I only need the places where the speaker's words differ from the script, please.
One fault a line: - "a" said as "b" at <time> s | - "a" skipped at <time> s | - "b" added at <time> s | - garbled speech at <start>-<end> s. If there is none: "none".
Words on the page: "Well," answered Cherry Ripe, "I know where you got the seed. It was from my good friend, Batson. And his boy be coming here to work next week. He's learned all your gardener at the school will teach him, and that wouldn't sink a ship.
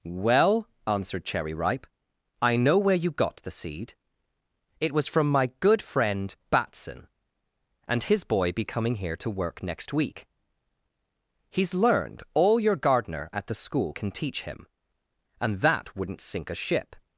- "will" said as "can" at 13.9 s